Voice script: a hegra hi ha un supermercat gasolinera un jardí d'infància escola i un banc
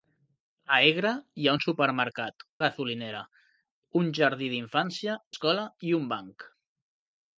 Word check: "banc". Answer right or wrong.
right